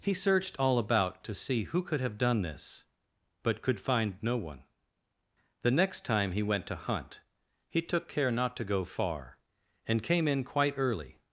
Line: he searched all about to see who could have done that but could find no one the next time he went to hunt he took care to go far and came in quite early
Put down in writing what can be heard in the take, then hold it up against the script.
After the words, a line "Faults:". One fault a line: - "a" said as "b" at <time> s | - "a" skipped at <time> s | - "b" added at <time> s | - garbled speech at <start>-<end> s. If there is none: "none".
he searched all about to see who could have done this but could find no one the next time he went to hunt he took care not to go far and came in quite early
Faults:
- "that" said as "this" at 2.4 s
- "not" added at 8.3 s